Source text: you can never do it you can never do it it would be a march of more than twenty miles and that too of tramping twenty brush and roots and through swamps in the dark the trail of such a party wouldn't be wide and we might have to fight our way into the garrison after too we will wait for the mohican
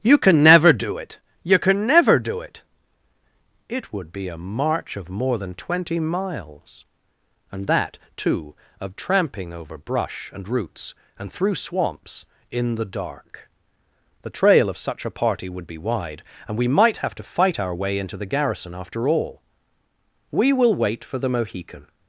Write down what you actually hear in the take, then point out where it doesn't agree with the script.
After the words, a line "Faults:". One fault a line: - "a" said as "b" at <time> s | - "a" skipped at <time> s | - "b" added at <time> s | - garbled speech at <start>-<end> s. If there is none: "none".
you can never do it you can never do it it would be a march of more than twenty miles and that too of tramping over brush and roots and through swamps in the dark the trail of such a party would be wide and we might have to fight our way into the garrison after all we will wait for the mohican
Faults:
- "twenty" said as "over" at 9.5 s
- "wouldn't" said as "would" at 15.5 s
- "too" said as "all" at 19.1 s